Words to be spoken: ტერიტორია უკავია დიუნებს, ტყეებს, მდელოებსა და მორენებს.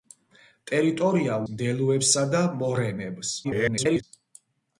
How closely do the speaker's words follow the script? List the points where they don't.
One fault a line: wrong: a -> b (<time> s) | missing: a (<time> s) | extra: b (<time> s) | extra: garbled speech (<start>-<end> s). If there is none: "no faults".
missing: უკავია დიუნებს ტყეებს (1.4 s)
extra: garbled speech (3.4-4.0 s)